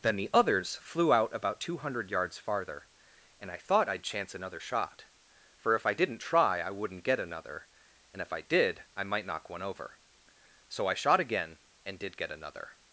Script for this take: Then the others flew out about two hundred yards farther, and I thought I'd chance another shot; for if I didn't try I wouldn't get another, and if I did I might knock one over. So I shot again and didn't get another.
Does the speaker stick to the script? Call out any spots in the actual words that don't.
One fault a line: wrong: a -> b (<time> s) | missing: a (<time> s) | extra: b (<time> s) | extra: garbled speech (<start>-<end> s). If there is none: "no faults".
wrong: didn't -> did (12.0 s)